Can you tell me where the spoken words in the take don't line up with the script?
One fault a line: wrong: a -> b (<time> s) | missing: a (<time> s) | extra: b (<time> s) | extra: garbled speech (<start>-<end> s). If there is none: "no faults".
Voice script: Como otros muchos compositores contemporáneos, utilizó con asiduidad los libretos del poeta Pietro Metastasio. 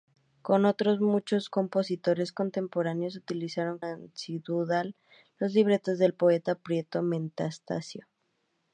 missing: con (3.8 s)